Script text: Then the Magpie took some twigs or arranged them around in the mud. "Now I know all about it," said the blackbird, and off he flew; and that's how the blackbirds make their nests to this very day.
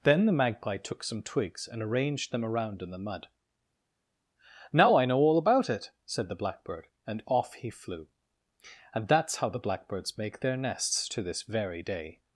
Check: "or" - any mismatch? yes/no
yes